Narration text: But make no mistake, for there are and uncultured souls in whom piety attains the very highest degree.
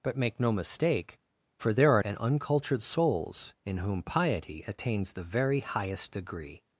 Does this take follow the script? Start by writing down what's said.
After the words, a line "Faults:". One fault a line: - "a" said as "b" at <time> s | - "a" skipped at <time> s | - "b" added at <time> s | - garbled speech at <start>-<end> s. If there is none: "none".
But make no mistake, for there are and uncultured souls in whom piety attains the very highest degree.
Faults:
none